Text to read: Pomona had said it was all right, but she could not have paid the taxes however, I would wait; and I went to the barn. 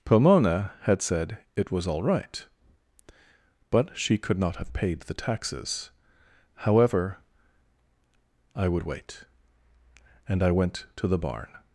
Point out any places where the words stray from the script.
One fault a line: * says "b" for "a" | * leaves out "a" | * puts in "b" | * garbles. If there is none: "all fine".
all fine